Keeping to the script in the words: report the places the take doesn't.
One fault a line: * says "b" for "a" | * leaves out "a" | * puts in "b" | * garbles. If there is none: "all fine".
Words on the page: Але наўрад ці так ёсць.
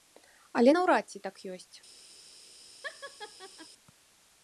all fine